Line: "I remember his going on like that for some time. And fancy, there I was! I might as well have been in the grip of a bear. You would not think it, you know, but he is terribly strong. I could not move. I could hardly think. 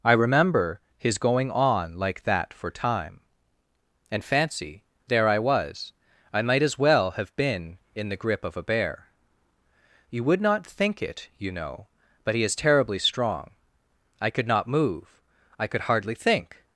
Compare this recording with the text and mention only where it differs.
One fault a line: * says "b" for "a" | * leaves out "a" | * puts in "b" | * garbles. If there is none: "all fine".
* leaves out "some"